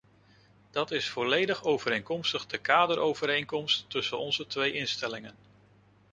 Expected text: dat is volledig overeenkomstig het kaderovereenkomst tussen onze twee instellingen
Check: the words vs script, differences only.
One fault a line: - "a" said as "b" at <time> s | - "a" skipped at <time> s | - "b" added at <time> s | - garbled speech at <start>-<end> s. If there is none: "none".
- "het" said as "de" at 2.5 s